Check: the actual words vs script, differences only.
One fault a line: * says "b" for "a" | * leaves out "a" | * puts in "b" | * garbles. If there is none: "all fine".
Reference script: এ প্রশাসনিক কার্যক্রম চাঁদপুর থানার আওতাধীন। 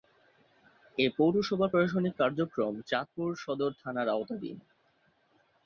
* puts in "পৌরসভার"
* puts in "সদর"